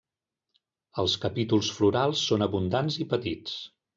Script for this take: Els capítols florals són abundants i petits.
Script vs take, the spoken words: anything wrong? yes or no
no